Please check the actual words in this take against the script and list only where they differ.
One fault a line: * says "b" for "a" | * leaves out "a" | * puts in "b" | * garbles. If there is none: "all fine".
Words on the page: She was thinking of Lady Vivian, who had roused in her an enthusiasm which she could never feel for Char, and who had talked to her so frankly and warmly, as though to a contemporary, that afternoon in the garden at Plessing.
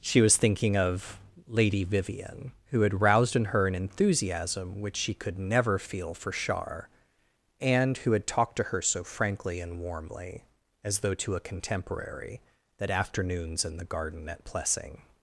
* says "afternoons" for "afternoon"